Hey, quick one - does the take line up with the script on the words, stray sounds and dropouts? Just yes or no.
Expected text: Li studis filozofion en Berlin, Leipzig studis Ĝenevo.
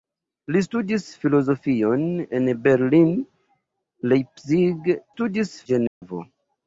no